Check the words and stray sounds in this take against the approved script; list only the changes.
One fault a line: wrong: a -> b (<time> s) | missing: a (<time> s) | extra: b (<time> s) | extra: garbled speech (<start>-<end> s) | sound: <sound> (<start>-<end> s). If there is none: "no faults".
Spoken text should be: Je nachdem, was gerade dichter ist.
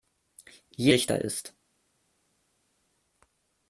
missing: nachdem was gerade (0.9 s)